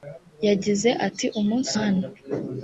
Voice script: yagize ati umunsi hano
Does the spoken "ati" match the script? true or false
true